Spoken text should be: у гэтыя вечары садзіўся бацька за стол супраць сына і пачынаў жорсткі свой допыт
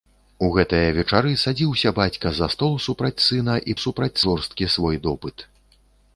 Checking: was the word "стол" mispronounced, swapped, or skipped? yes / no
no